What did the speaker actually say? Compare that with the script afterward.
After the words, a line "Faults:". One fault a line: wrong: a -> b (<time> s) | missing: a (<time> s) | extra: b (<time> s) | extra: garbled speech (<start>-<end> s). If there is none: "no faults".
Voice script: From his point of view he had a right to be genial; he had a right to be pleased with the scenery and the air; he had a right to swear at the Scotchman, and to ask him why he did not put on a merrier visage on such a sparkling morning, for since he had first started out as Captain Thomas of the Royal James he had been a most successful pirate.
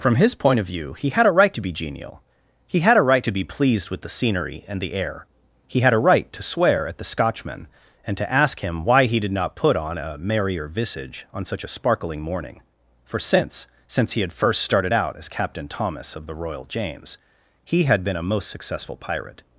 From his point of view he had a right to be genial; he had a right to be pleased with the scenery and the air; he had a right to swear at the Scotchman, and to ask him why he did not put on a merrier visage on such a sparkling morning, for since since he had first started out as Captain Thomas of the Royal James he had been a most successful pirate.
Faults:
extra: since (13.9 s)